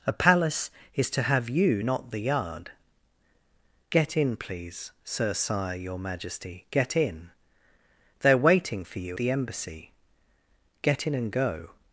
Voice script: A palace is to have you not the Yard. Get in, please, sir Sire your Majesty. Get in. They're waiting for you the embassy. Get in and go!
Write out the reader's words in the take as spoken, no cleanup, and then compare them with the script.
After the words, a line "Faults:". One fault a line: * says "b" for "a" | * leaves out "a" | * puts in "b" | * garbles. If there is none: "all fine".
A palace is to have you not the Yard. Get in, please, sir Sire your Majesty. Get in. They're waiting for you the embassy. Get in and go!
Faults:
all fine